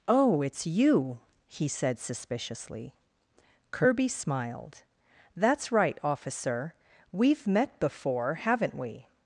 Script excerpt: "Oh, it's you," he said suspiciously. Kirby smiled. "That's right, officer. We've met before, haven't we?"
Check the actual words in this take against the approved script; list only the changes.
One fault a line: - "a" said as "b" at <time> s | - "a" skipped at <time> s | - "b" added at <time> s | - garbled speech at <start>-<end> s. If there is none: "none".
none